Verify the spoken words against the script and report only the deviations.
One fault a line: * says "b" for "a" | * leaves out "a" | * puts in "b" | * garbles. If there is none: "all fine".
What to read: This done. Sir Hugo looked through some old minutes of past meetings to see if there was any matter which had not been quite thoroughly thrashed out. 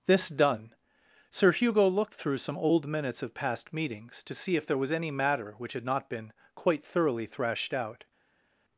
all fine